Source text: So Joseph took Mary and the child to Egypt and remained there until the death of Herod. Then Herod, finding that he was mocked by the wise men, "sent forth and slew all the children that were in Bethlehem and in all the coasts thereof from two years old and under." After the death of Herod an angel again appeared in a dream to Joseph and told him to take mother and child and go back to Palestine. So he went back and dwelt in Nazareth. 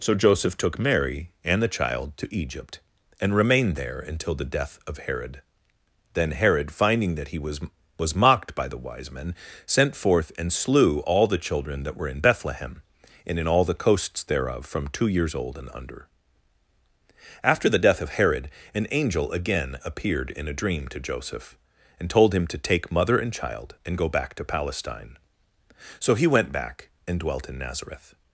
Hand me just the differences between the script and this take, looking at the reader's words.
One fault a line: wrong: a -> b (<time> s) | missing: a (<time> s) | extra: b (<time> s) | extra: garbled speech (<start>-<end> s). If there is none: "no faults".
extra: was (8.0 s)